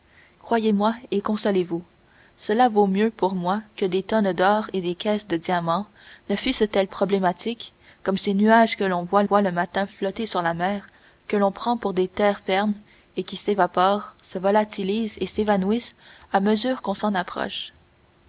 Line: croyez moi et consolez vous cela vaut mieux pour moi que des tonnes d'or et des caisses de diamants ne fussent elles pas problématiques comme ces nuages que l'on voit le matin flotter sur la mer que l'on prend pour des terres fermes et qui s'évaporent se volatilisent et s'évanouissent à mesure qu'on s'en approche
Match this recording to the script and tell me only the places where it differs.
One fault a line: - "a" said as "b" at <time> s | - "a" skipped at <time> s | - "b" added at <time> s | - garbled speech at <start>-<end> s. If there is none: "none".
- "pas" skipped at 6.9 s
- "voit" added at 9.2 s